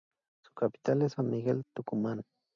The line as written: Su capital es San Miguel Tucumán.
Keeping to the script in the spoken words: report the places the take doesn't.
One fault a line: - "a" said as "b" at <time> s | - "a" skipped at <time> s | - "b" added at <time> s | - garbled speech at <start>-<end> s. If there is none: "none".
none